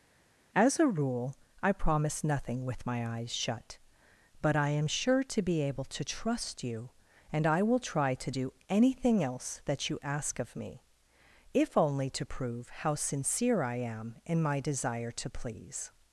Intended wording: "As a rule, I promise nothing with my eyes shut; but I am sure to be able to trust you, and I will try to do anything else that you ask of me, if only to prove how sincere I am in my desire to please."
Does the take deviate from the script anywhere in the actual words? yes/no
no